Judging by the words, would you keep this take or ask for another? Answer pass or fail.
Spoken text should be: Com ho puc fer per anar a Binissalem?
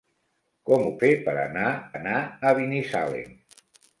fail